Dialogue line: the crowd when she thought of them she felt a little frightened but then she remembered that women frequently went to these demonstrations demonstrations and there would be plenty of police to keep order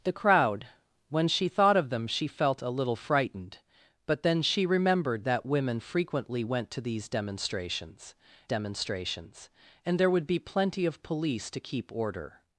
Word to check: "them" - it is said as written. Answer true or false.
true